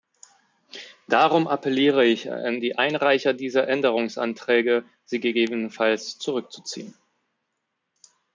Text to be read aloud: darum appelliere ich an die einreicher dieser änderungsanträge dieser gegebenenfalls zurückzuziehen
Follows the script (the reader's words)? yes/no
no